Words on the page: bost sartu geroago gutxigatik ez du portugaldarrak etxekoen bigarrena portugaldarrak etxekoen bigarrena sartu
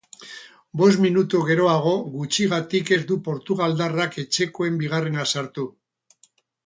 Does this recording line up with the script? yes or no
no